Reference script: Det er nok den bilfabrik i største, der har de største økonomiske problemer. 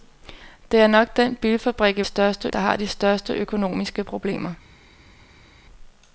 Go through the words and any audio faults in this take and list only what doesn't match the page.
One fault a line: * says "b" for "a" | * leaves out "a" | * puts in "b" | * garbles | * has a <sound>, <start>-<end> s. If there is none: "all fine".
all fine